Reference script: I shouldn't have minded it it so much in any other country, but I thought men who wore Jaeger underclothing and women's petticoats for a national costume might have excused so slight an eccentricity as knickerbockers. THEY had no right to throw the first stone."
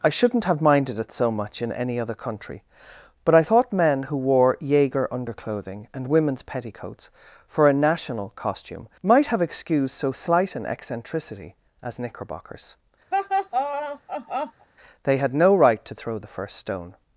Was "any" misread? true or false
false